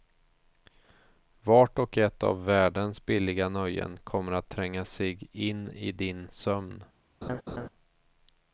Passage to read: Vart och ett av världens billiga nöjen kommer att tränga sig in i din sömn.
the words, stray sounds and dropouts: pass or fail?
fail